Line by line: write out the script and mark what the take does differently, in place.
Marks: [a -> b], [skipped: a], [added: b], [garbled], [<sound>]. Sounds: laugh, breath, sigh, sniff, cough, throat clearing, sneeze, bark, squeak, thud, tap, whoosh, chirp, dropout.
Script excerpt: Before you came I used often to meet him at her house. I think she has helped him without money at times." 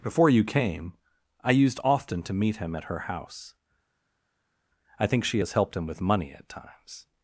Before you came I used often to meet him at her house. I think she has helped him [without -> with] money at times."